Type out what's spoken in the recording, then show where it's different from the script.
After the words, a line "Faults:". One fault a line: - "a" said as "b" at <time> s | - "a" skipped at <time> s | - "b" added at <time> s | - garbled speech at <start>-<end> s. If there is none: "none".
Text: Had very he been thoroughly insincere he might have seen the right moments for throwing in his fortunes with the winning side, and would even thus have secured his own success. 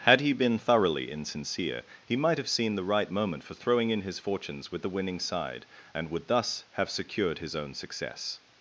Had he been thoroughly insincere he might have seen the right moment for throwing in his fortunes with the winning side, and would thus have secured his own success.
Faults:
- "very" skipped at 0.2 s
- "moments" said as "moment" at 3.1 s
- "even" skipped at 6.3 s